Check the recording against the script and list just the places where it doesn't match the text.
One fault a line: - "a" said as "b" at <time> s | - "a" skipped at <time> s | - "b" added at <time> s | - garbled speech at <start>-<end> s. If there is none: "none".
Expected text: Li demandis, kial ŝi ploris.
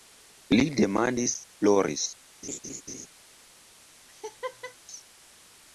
- "kial ŝi" skipped at 1.4 s